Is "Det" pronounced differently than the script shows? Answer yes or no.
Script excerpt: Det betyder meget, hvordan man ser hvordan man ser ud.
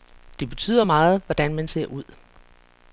no